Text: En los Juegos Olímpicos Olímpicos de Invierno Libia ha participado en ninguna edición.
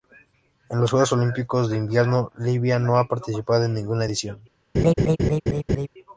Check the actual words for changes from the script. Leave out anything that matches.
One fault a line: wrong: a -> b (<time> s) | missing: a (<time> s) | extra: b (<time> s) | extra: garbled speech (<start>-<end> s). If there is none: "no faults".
missing: Olímpicos (1.7 s)
extra: no (2.8 s)